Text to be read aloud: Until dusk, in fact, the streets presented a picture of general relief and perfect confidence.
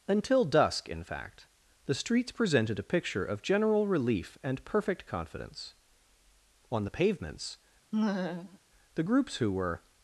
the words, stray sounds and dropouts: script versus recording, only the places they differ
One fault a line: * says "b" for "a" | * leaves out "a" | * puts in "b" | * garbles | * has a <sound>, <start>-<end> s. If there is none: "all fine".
* puts in "On the pavements the groups who were"
* has a laugh, 7.9-8.6 s